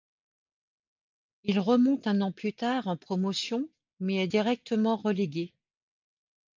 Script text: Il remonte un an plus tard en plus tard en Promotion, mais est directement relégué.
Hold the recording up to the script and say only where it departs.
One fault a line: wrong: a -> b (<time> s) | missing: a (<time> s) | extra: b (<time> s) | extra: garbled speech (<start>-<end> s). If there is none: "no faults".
missing: plus tard en (3.0 s)